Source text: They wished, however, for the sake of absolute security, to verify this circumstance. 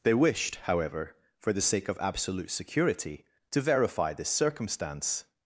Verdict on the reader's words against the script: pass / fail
pass